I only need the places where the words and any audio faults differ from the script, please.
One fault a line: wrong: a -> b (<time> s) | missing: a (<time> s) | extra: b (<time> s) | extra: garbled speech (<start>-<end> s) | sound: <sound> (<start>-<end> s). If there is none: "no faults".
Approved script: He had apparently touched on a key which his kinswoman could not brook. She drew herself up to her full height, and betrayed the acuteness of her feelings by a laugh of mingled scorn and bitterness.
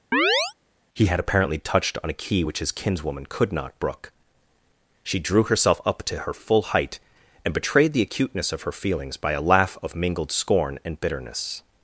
sound: chirp (0.1-0.5 s)